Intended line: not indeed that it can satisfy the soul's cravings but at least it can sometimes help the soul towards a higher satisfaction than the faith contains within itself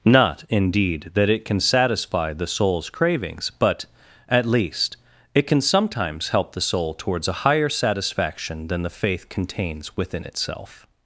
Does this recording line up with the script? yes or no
yes